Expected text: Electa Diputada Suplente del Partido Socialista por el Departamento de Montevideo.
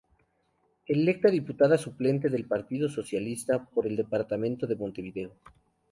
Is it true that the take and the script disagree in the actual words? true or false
false